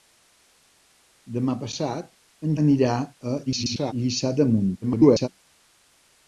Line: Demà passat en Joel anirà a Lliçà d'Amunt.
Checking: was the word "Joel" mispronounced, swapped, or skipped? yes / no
yes